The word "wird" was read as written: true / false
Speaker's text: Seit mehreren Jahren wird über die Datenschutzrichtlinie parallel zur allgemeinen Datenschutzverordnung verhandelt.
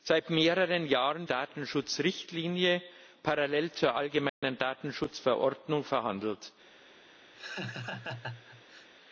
false